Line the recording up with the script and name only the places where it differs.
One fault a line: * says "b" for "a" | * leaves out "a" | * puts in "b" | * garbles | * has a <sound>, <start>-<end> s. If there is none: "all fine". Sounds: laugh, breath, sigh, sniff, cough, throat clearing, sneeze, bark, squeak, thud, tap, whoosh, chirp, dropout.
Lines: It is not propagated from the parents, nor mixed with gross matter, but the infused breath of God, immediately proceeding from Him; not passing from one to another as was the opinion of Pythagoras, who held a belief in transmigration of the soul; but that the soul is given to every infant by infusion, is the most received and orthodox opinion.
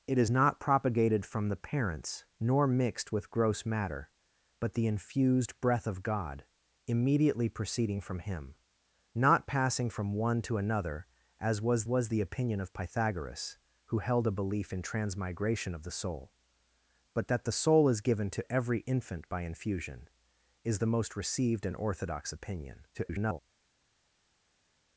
* puts in "was"
* garbles